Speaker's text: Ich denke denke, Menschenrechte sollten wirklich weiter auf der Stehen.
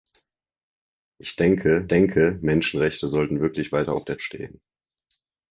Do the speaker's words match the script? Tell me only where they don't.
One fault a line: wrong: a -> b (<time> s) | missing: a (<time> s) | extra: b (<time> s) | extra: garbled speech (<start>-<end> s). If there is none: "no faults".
no faults